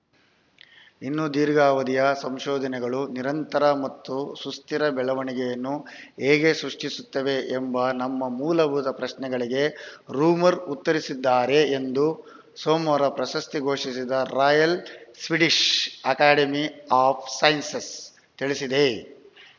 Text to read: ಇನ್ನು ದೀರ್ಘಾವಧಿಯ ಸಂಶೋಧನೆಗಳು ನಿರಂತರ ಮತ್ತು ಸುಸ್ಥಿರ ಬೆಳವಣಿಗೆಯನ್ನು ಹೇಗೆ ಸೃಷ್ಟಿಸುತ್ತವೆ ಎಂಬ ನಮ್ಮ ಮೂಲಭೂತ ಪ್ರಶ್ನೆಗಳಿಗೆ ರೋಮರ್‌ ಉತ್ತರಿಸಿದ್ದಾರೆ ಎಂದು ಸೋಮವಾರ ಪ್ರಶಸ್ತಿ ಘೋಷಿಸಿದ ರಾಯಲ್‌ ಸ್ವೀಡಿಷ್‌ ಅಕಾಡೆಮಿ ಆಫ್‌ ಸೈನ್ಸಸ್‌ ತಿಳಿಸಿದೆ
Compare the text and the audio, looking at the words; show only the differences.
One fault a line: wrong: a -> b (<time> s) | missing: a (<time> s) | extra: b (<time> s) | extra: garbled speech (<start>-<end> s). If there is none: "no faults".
no faults